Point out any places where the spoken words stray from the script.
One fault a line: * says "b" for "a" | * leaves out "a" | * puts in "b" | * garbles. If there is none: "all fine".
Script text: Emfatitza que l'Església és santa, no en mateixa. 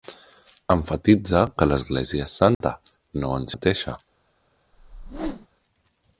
all fine